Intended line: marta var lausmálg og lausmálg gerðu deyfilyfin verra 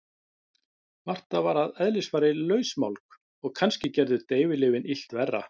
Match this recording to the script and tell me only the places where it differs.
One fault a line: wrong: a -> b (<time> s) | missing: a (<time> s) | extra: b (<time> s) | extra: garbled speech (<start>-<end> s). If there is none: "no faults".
extra: að eðlisfari (1.6 s)
wrong: lausmálg -> kannski (3.6 s)
extra: illt (5.0 s)